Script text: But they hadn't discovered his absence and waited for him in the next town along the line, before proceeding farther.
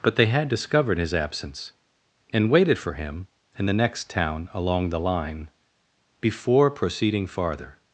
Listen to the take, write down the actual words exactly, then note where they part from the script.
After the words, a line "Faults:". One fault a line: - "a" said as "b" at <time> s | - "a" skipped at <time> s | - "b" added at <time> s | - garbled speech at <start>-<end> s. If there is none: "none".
But they had discovered his absence and waited for him in the next town along the line, before proceeding farther.
Faults:
- "hadn't" said as "had" at 0.3 s